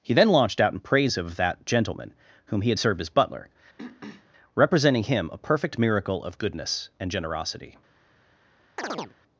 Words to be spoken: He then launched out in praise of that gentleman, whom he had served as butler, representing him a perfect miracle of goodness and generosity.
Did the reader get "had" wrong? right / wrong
right